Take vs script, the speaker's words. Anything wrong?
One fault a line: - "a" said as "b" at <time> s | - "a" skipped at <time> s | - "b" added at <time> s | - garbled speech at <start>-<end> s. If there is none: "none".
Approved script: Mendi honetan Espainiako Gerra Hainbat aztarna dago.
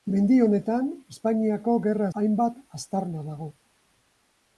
none